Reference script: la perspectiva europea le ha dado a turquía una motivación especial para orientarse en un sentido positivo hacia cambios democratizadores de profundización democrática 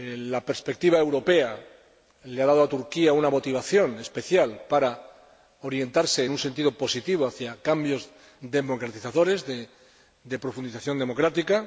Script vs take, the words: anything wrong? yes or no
no